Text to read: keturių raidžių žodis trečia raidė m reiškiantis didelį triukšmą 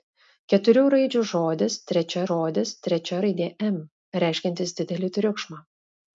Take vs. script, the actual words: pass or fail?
fail